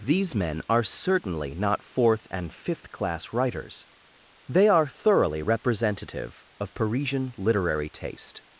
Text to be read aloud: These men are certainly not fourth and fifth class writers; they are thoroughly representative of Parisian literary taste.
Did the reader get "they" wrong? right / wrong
right